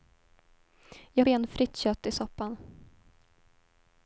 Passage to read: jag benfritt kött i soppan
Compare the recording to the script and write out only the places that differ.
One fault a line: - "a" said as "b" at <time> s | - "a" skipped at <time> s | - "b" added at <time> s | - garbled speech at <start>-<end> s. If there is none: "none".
none